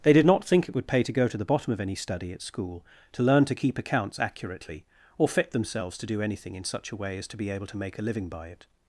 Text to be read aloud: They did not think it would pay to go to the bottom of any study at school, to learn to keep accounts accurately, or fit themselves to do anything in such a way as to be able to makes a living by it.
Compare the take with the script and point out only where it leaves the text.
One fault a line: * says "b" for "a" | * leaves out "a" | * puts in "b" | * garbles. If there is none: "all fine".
* says "make" for "makes"